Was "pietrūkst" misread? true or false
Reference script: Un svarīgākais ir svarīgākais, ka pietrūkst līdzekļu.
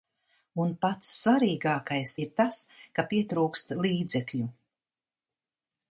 false